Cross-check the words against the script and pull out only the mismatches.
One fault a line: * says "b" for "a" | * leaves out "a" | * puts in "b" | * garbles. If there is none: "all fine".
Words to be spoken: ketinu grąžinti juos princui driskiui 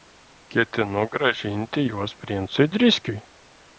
all fine